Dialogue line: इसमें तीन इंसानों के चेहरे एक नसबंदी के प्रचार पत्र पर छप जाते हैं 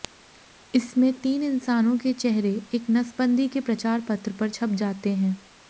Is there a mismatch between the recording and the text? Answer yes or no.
no